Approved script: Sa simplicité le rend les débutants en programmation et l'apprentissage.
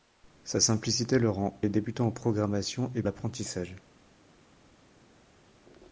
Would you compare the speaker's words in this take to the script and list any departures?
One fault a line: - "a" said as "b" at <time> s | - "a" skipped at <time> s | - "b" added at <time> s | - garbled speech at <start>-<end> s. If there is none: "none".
none